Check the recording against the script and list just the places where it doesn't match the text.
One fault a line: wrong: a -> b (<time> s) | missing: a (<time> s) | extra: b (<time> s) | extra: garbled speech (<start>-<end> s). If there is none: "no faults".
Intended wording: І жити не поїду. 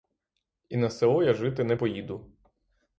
extra: на село я (0.8 s)